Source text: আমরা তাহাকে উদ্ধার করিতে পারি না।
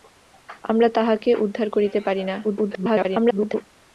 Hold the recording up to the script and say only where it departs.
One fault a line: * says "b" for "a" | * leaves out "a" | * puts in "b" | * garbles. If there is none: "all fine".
* garbles